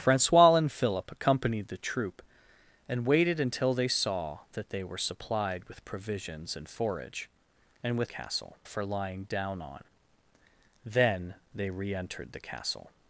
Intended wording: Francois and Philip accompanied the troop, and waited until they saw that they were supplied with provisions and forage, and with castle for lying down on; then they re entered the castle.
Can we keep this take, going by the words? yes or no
yes